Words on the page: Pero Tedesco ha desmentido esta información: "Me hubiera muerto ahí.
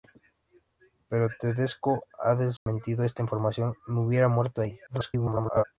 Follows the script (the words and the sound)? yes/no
no